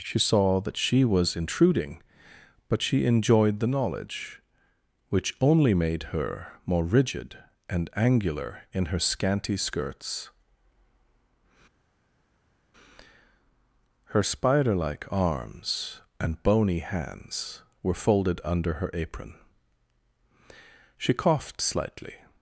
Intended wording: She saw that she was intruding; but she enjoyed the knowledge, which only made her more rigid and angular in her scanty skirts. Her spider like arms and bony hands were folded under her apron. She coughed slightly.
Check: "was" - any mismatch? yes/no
no